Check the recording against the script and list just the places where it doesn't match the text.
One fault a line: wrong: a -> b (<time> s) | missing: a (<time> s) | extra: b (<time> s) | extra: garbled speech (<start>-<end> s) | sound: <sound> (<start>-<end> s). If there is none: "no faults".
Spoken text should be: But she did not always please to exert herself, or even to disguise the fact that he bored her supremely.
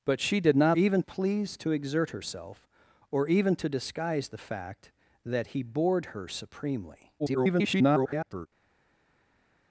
wrong: always -> even (0.7 s)
extra: garbled speech (7.2-8.5 s)